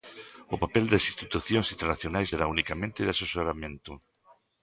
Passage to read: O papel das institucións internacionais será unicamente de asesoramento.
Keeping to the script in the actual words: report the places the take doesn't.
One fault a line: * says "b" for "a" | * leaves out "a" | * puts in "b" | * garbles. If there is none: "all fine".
all fine